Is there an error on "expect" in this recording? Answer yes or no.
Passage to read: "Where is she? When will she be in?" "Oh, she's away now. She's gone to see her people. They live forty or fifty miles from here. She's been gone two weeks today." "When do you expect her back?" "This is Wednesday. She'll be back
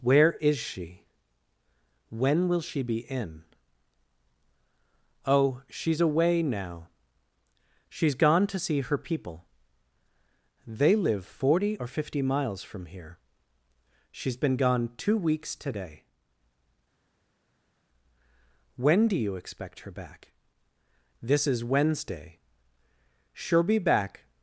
no